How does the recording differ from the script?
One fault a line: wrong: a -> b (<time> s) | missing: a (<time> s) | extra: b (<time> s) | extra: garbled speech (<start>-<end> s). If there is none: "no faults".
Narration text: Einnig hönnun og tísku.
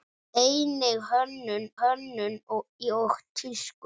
extra: hönnun (1.8 s)